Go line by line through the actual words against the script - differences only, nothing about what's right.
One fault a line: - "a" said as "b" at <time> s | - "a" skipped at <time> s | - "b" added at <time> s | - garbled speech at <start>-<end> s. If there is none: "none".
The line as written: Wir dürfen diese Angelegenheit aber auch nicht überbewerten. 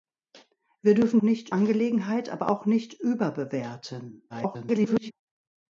- "diese" said as "nicht" at 1.2 s
- garbled speech at 4.3-5.1 s